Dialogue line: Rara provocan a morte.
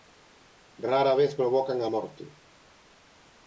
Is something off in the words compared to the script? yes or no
yes